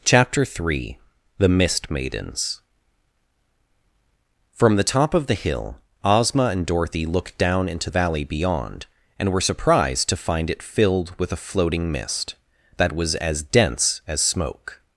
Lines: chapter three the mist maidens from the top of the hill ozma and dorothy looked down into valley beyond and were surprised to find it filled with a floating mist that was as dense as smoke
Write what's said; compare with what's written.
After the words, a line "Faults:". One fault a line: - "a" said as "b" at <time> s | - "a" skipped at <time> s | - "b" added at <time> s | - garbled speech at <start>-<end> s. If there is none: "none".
chapter three the mist maidens from the top of the hill ozma and dorothy looked down into valley beyond and were surprised to find it filled with a floating mist that was as dense as smoke
Faults:
none